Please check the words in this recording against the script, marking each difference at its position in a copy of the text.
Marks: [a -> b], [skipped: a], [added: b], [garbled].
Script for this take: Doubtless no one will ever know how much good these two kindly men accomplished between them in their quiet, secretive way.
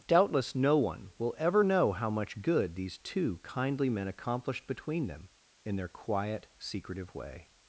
Doubtless no one will ever know how much good these two kindly men accomplished between them in their quiet, secretive way.